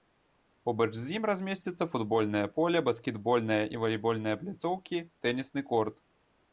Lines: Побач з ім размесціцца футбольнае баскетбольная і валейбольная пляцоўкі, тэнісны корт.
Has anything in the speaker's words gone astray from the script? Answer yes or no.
yes